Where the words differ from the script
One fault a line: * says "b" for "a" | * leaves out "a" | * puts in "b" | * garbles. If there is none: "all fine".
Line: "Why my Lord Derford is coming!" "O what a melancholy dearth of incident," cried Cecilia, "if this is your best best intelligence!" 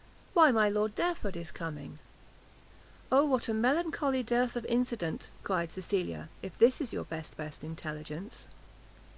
all fine